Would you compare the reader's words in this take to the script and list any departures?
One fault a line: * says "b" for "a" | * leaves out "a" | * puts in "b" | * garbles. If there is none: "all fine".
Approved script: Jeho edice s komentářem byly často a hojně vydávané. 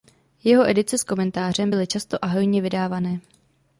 all fine